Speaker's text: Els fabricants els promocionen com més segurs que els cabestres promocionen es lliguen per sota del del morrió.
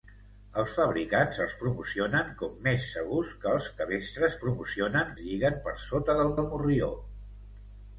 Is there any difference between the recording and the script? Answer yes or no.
no